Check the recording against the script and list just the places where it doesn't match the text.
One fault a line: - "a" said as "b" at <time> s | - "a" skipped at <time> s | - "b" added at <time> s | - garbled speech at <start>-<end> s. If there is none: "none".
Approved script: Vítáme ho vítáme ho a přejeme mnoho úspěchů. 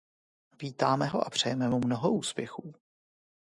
- "vítáme ho" skipped at 1.2 s
- "mu" added at 1.7 s